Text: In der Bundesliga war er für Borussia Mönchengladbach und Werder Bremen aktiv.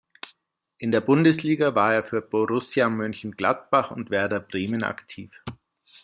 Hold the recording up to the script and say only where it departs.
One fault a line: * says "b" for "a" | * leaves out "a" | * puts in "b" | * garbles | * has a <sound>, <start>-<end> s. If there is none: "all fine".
all fine